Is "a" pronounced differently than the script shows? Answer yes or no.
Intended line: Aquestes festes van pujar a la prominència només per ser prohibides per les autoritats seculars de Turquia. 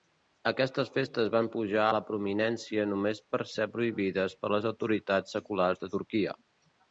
yes